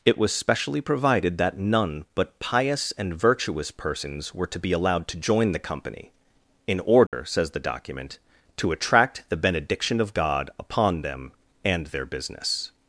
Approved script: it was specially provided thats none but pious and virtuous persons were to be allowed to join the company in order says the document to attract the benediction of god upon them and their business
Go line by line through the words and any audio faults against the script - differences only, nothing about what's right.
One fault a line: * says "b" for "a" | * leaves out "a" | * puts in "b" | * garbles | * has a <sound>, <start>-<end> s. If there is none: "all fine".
* says "that" for "thats"
* has a dropout, 7.1-7.1 s